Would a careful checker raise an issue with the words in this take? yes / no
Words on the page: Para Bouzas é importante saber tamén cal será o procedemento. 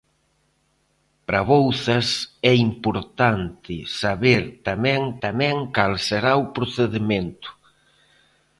yes